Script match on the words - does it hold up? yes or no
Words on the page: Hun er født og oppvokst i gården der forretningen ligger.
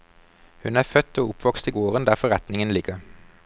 yes